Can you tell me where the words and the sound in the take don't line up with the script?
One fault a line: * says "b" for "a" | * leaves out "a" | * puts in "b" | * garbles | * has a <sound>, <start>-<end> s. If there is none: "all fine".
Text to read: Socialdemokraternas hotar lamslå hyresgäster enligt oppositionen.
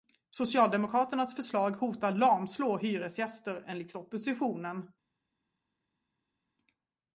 * puts in "förslag"